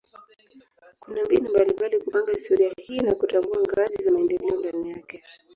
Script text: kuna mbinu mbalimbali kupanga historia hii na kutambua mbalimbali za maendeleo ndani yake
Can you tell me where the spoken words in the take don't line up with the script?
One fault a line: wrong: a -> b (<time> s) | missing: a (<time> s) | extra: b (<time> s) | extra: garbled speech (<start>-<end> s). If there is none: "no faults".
wrong: mbalimbali -> ngazi (3.6 s)